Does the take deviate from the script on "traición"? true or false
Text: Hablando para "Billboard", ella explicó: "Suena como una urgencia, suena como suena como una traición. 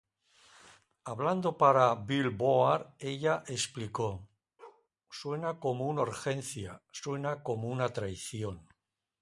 false